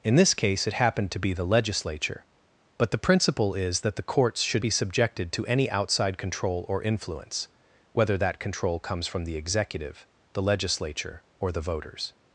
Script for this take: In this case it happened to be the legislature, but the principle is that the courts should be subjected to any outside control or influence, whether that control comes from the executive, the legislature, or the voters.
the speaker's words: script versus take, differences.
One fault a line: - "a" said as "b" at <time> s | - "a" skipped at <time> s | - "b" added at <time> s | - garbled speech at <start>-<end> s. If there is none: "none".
none